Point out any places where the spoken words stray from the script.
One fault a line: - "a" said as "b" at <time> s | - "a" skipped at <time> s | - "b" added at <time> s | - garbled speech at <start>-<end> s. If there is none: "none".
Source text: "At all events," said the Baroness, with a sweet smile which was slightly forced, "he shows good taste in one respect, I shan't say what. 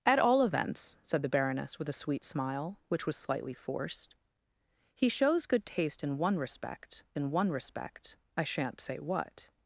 - "in one respect" added at 7.1 s